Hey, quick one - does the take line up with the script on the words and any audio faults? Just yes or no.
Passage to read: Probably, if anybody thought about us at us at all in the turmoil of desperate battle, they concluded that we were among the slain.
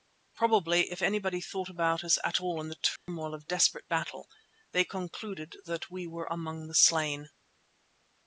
no